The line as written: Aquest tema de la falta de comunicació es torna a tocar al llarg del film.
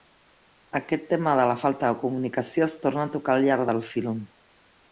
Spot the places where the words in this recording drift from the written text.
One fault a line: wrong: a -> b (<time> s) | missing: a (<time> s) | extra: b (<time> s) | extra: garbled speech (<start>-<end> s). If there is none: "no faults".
no faults